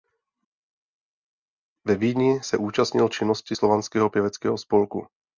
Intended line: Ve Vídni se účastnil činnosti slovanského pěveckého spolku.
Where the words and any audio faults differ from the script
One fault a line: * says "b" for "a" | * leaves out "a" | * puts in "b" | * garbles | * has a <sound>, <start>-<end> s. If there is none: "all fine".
all fine